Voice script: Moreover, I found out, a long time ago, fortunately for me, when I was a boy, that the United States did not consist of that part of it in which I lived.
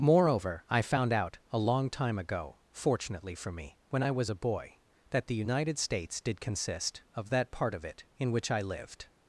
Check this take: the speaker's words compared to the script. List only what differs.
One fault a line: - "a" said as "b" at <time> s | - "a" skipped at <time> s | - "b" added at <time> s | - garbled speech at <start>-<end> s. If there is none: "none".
- "not" skipped at 6.4 s